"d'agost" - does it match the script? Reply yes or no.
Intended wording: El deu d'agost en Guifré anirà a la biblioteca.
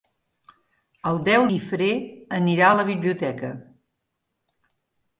no